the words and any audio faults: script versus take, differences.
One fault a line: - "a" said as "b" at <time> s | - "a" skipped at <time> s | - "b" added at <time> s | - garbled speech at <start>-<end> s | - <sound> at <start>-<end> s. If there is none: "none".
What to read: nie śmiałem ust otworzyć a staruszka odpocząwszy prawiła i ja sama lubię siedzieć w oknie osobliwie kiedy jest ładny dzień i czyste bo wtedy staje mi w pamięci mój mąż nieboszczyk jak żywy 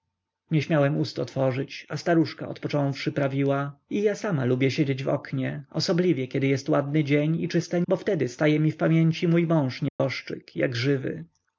- dropout at 9.9-10.0 s